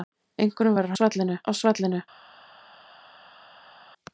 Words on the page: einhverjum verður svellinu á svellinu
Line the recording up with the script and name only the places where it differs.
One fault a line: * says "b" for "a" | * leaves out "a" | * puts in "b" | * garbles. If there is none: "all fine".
all fine